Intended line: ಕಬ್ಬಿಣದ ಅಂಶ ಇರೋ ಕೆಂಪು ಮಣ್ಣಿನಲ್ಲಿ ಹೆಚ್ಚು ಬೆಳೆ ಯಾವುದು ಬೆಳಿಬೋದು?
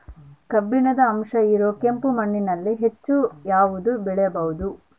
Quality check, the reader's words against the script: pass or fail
fail